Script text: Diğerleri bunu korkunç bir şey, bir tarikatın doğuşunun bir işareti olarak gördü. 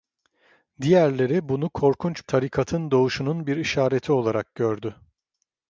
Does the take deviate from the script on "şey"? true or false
true